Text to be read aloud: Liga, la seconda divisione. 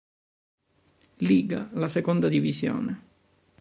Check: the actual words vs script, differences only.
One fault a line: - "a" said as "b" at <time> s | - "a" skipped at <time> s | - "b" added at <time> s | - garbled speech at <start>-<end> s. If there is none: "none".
none